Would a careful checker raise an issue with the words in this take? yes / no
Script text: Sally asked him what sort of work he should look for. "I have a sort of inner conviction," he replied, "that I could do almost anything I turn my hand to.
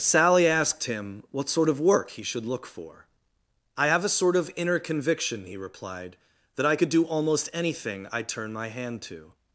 no